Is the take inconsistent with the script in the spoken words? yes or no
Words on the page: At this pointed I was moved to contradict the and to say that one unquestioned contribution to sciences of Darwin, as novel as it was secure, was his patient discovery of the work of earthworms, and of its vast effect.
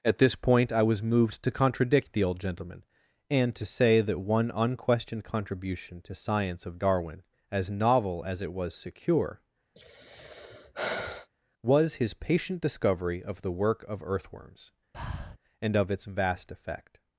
yes